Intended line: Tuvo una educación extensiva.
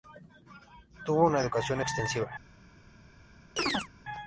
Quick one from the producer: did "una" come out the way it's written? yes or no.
yes